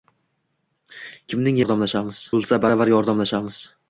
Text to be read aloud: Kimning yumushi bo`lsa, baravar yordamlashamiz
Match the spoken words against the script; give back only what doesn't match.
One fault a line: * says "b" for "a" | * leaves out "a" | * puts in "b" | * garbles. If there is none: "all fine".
* says "yordamlashamiz" for "yumushi"